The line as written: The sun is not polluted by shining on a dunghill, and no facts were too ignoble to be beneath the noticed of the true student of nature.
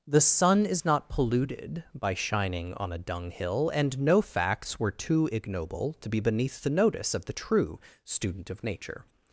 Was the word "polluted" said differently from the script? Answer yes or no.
no